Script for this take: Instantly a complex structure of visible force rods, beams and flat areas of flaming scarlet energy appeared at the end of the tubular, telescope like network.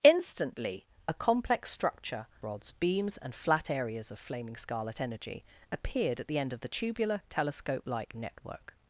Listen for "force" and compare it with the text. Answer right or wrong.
wrong